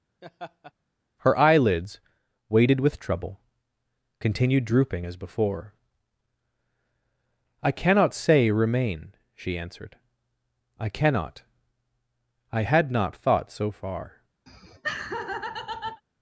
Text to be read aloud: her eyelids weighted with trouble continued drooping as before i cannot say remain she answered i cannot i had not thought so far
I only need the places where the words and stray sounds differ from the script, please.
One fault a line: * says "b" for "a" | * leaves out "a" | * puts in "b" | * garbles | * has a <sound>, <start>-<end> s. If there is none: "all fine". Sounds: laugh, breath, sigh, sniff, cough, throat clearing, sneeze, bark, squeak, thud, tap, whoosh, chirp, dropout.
* has a laugh, 0.2-0.7 s
* has a laugh, 14.5-16.0 s